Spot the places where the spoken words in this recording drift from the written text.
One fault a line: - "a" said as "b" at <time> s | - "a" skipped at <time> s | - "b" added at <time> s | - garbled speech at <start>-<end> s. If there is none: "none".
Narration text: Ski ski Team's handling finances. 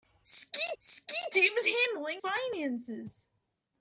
none